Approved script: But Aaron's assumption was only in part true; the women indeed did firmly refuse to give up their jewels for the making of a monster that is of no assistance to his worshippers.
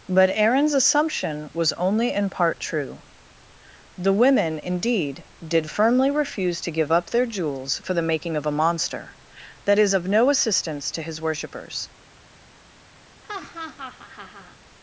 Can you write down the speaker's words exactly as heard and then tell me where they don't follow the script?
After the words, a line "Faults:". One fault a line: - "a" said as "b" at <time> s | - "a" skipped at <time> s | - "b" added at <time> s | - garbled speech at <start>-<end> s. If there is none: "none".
But Aaron's assumption was only in part true; the women indeed did firmly refuse to give up their jewels for the making of a monster that is of no assistance to his worshippers.
Faults:
none